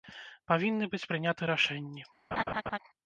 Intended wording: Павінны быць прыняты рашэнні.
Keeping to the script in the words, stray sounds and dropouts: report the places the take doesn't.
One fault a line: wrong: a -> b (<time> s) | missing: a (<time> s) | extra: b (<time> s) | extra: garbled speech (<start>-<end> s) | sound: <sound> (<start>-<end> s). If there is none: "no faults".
sound: laugh (2.3-2.8 s)